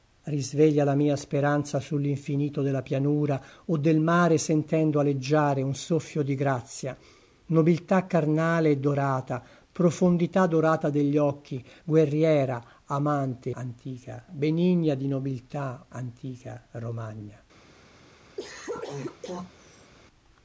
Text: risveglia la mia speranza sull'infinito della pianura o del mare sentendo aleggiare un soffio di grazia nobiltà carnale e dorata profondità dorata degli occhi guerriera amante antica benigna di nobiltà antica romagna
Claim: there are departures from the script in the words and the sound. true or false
true